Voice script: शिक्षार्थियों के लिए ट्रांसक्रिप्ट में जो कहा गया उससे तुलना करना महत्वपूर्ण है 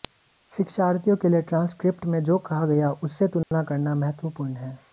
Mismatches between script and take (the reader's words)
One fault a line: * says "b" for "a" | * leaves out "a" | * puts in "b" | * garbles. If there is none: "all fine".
all fine